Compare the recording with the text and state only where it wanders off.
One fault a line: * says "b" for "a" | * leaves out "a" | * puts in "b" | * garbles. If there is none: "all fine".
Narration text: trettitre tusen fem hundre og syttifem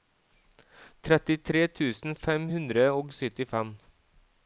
all fine